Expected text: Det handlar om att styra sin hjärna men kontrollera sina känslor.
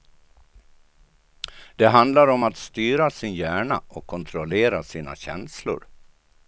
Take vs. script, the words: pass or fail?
fail